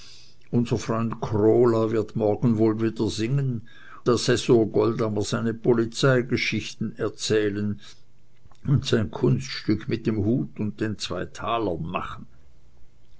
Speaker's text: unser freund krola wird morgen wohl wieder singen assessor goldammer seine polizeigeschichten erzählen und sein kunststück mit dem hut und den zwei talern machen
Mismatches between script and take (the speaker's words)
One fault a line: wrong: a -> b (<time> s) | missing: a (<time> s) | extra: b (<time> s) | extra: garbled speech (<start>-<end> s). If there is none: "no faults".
no faults